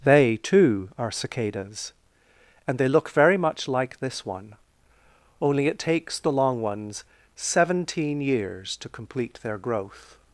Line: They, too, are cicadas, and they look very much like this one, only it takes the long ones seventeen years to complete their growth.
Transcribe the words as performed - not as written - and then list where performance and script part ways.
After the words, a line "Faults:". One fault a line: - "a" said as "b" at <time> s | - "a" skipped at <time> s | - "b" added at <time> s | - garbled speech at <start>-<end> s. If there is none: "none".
They, too, are cicadas, and they look very much like this one, only it takes the long ones seventeen years to complete their growth.
Faults:
none